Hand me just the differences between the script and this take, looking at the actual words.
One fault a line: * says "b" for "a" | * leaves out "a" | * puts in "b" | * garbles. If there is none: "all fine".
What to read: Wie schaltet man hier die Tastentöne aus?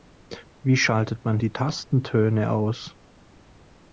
* leaves out "hier"